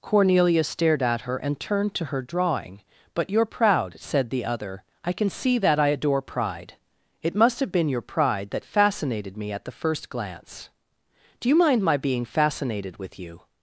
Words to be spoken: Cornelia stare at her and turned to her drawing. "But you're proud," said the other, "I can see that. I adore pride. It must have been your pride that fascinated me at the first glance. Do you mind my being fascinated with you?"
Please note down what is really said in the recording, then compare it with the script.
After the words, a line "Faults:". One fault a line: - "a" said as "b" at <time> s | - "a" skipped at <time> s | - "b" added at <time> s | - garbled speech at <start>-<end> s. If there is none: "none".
Cornelia stared at her and turned to her drawing. "But you're proud," said the other, "I can see that. I adore pride. It must have been your pride that fascinated me at the first glance. Do you mind my being fascinated with you?"
Faults:
- "stare" said as "stared" at 0.6 s